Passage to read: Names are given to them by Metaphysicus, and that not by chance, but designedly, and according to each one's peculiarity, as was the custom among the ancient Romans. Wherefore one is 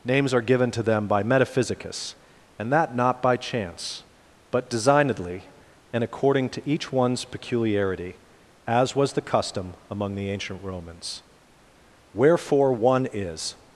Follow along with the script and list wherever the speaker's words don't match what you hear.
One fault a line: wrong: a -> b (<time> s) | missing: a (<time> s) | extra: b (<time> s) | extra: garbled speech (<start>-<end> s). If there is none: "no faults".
no faults